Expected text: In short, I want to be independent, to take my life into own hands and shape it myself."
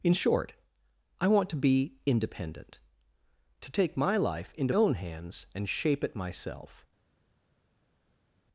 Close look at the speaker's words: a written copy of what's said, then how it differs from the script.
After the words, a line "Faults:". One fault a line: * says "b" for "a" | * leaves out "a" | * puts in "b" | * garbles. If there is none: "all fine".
In short, I want to be independent, to take my life into own hands and shape it myself."
Faults:
all fine